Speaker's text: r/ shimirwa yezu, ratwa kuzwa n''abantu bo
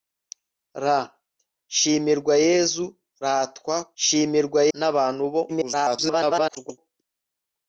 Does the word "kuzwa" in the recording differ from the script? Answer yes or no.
yes